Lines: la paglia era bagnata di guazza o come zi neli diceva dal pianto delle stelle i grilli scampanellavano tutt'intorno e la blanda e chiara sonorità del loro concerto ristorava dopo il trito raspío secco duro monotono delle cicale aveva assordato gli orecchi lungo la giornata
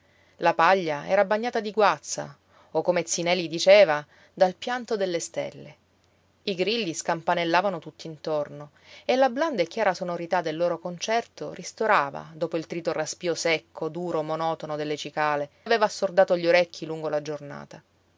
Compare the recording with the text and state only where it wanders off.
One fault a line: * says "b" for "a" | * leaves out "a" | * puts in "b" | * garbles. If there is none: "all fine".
all fine